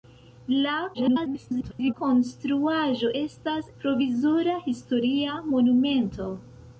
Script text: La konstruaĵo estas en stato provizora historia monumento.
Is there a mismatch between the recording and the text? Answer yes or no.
yes